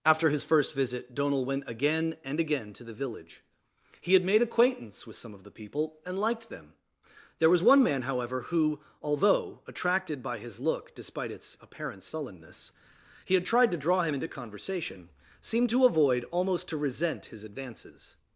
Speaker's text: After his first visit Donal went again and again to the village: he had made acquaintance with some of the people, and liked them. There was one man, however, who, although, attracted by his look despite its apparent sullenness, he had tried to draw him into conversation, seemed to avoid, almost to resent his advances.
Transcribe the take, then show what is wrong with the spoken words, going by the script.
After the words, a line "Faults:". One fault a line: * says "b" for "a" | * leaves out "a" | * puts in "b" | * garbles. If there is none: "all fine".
After his first visit Donal went again and again to the village: he had made acquaintance with some of the people, and liked them. There was one man, however, who, although, attracted by his look despite its apparent sullenness, he had tried to draw him into conversation, seemed to avoid, almost to resent his advances.
Faults:
all fine